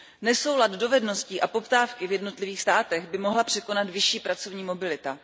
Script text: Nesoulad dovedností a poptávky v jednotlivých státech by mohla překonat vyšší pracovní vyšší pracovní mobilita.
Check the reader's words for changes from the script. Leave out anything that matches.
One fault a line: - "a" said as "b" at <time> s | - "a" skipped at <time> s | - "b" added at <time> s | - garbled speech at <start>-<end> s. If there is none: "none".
- "vyšší pracovní" skipped at 4.6 s